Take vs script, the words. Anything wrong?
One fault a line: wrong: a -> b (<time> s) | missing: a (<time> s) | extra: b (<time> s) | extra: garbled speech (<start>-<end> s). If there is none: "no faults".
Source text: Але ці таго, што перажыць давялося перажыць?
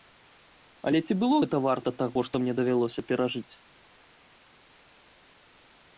extra: было гэта варта (1.2 s)
wrong: перажыць -> мне (2.4 s)